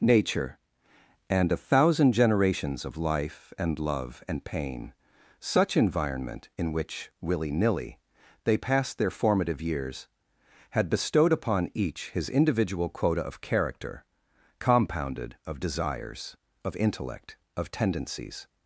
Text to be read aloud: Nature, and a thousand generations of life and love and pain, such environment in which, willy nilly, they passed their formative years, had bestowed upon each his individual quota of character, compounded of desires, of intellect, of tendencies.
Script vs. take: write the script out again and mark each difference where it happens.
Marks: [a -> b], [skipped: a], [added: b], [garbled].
Nature, and a thousand generations of life and love and pain, such environment in which, willy nilly, they passed their formative years, had bestowed upon each his individual quota of character, compounded of desires, of intellect, of tendencies.